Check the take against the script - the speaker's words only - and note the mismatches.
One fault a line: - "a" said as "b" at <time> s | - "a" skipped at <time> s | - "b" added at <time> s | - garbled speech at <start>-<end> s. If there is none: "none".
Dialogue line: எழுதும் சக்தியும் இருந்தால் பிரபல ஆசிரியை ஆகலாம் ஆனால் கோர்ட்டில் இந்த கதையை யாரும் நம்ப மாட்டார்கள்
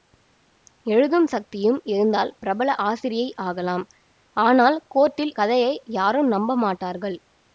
- "இந்த" skipped at 5.3 s